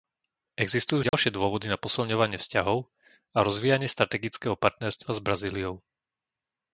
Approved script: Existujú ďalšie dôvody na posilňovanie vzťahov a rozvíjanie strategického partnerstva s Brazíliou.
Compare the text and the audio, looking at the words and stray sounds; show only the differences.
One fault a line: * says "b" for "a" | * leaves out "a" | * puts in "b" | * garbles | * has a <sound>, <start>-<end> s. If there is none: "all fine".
* has a dropout, 1.1-1.1 s